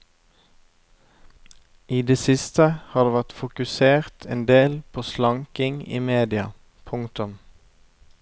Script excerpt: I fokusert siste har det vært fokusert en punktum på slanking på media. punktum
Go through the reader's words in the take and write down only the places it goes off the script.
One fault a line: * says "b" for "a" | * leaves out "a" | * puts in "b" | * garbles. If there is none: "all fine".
* says "det" for "fokusert"
* says "del" for "punktum"
* says "i" for "på"